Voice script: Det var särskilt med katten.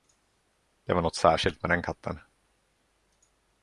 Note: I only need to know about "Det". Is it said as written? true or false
true